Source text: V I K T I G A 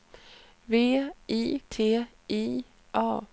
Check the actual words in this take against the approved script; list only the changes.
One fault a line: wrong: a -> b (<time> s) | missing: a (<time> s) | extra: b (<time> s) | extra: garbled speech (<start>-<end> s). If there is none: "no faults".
missing: K (1.6 s)
missing: G (2.6 s)